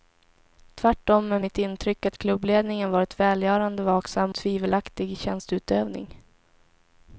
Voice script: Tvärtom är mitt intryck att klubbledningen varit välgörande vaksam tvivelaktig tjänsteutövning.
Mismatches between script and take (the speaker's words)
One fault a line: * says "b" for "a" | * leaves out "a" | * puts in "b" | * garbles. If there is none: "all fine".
all fine